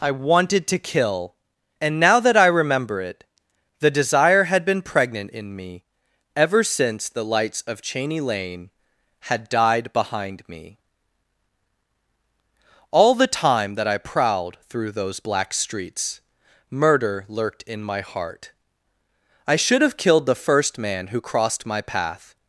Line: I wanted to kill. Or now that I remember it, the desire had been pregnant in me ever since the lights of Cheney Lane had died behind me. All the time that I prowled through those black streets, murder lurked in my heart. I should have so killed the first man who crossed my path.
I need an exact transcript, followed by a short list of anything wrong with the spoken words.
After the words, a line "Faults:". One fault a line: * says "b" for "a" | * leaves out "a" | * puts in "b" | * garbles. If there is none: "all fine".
I wanted to kill. And now that I remember it, the desire had been pregnant in me ever since the lights of Cheney Lane had died behind me. All the time that I prowled through those black streets, murder lurked in my heart. I should have killed the first man who crossed my path.
Faults:
* says "And" for "Or"
* leaves out "so"